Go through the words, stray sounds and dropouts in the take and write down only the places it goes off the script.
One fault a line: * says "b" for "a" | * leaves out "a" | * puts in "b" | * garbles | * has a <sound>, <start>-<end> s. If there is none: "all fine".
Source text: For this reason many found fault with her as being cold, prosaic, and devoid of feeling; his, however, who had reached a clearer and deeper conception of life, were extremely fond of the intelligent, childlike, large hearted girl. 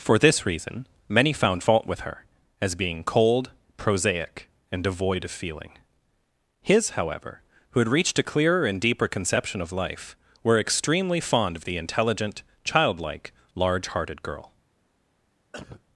* has a cough, 15.5-15.8 s